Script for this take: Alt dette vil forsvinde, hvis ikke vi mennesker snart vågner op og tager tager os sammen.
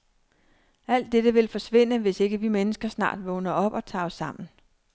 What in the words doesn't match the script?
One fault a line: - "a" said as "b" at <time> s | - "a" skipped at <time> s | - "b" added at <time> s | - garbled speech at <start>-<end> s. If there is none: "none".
- "tager" skipped at 4.0 s